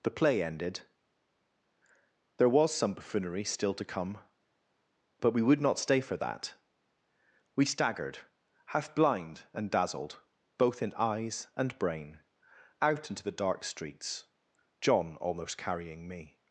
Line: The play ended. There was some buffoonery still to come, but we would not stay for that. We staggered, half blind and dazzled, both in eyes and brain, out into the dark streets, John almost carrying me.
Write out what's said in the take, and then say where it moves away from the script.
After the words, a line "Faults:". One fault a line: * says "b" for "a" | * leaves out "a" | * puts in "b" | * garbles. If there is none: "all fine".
The play ended. There was some buffoonery still to come, but we would not stay for that. We staggered, half blind and dazzled, both in eyes and brain, out into the dark streets, John almost carrying me.
Faults:
all fine